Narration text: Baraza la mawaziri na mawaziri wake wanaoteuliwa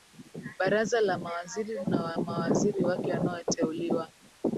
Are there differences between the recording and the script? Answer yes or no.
no